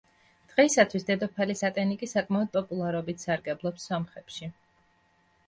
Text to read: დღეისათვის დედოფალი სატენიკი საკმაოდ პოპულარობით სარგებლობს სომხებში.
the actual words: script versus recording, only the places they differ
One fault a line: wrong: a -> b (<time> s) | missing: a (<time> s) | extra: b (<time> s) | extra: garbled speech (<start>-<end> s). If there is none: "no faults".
no faults